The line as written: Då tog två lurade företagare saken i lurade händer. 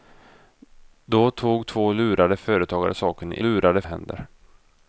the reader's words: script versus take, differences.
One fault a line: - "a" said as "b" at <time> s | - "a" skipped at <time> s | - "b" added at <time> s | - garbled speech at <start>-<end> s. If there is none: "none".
none